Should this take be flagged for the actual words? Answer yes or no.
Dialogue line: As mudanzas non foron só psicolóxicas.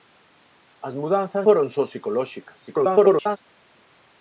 yes